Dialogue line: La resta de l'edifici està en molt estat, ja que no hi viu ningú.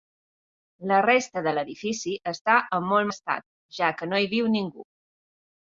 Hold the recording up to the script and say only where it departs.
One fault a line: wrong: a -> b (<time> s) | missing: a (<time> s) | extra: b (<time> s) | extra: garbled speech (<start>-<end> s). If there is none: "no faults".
no faults